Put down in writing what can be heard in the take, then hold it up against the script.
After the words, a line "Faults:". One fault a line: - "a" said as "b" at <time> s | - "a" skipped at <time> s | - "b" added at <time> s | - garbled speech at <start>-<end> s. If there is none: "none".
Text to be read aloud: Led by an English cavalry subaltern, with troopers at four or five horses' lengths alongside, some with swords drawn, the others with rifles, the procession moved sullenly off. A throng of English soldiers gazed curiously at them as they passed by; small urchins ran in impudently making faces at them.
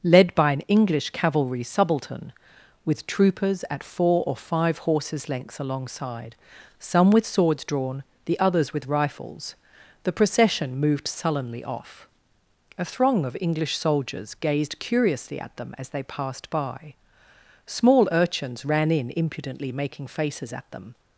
Led by an English cavalry subaltern, with troopers at four or five horses' lengths alongside, some with swords drawn, the others with rifles, the procession moved sullenly off. A throng of English soldiers gazed curiously at them as they passed by; small urchins ran in impudently making faces at them.
Faults:
none